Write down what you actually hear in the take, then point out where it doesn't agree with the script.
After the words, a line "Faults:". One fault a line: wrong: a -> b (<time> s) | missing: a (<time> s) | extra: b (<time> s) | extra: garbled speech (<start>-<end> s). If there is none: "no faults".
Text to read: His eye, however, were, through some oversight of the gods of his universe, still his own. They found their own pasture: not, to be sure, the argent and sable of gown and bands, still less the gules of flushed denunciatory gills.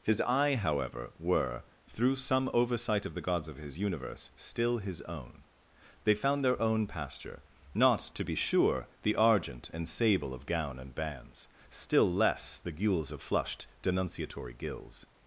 His eye, however, were, through some oversight of the gods of his universe, still his own. They found their own pasture: not, to be sure, the argent and sable of gown and bands, still less the gules of flushed denunciatory gills.
Faults:
no faults